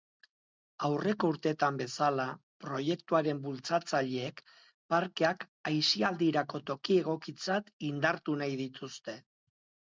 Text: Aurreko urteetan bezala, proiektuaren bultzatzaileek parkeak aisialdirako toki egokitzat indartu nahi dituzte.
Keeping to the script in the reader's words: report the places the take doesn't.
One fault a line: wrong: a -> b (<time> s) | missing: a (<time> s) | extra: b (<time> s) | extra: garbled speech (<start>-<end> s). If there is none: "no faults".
no faults